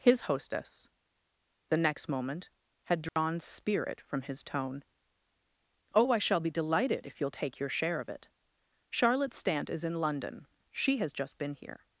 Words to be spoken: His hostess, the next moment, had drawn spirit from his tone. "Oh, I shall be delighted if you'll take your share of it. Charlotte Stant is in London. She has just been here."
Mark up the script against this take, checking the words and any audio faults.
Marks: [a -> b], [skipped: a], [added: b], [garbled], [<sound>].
His hostess, the next moment, had drawn [dropout] spirit from his tone. "Oh, I shall be delighted if you'll take your share of it. Charlotte Stant is in London. She has just been here."